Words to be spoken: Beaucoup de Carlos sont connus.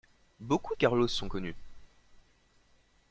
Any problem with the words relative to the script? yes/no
no